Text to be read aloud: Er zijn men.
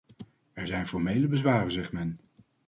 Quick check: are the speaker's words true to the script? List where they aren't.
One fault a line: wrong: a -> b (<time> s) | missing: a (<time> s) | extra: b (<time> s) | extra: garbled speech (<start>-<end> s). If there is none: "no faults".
extra: formele bezwaren zegt (0.9 s)